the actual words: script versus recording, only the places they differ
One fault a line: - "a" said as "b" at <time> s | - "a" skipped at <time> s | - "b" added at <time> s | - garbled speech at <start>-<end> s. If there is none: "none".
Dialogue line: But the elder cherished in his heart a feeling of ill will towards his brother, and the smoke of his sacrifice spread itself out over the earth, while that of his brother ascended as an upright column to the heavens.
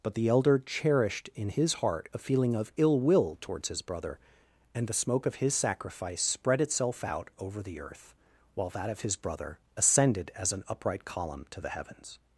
none